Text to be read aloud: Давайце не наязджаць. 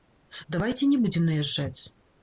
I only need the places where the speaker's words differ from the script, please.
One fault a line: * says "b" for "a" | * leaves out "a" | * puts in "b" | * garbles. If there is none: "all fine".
* puts in "будзем"